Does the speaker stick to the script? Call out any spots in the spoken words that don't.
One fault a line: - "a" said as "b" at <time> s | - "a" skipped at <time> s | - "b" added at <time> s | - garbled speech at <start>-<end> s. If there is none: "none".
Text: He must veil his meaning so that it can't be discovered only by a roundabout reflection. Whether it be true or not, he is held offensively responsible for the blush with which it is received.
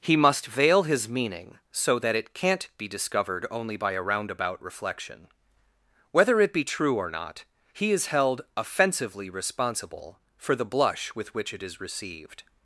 none